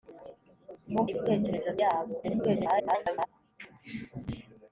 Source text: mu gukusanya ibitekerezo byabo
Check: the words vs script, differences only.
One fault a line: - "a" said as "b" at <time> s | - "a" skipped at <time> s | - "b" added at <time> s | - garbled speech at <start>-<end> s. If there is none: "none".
- "gukusanya" skipped at 1.0 s
- garbled speech at 2.2-3.3 s